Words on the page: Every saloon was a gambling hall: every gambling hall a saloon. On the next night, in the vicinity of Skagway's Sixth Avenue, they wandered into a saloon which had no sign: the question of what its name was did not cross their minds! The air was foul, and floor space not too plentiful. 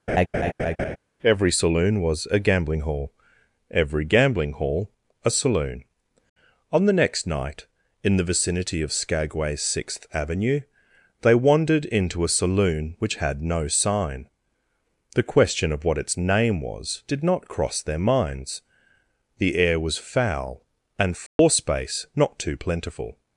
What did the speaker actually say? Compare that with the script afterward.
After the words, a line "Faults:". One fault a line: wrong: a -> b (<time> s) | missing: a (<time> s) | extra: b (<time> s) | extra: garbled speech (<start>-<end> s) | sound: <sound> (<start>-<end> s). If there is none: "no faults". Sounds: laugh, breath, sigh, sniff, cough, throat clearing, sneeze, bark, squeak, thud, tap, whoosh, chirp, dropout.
Every saloon was a gambling hall: every gambling hall a saloon. On the next night, in the vicinity of Skagway's Sixth Avenue, they wandered into a saloon which had no sign: the question of what its name was did not cross their minds! The air was foul, and floor space not too plentiful.
Faults:
sound: laugh (0.1-1.0 s)
sound: dropout (21.3-21.4 s)